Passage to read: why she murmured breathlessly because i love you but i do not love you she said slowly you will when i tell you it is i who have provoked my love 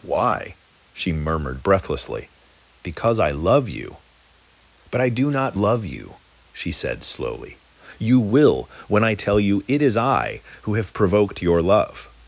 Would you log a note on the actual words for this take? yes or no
yes